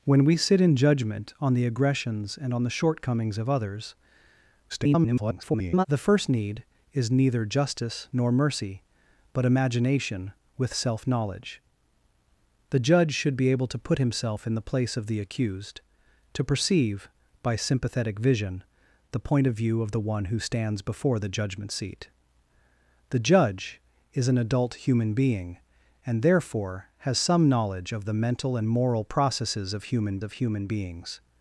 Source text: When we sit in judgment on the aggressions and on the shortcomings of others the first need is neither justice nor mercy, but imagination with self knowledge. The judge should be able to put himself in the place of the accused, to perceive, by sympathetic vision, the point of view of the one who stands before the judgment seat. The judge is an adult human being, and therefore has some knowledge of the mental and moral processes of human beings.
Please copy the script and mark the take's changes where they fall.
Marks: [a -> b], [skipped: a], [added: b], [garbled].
When we sit in judgment on the aggressions and on the shortcomings of others [garbled] the first need is neither justice nor mercy, but imagination with self knowledge. The judge should be able to put himself in the place of the accused, to perceive, by sympathetic vision, the point of view of the one who stands before the judgment seat. The judge is an adult human being, and therefore has some knowledge of the mental and moral processes of human [added: of human] beings.